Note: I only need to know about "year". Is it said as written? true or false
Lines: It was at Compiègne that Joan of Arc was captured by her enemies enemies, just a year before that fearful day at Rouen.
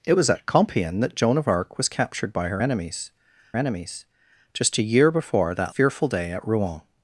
true